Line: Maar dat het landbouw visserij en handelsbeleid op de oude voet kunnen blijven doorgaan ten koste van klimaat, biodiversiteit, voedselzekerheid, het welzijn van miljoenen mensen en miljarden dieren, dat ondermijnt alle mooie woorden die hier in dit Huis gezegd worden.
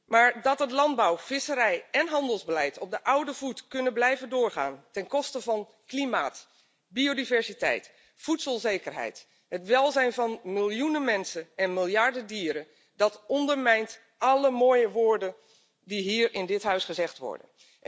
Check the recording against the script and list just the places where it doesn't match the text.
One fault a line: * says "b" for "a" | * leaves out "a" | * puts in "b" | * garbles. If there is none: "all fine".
all fine